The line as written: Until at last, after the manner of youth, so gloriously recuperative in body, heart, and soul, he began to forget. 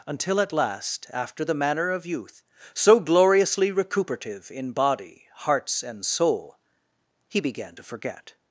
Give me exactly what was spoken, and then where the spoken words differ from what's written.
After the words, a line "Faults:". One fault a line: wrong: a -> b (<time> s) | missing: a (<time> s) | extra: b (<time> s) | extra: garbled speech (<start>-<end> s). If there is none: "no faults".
Until at last, after the manner of youth, so gloriously recuperative in body, hearts, and soul, he began to forget.
Faults:
wrong: heart -> hearts (5.3 s)